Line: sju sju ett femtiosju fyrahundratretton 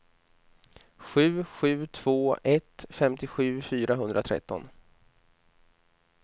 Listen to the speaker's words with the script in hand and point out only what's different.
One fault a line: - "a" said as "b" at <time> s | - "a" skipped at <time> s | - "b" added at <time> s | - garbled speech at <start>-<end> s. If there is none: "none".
- "två" added at 1.9 s